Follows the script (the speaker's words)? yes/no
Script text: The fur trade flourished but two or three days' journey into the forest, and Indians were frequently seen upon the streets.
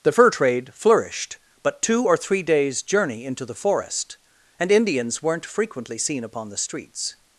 no